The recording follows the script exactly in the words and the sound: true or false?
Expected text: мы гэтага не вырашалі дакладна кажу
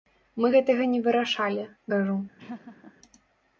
false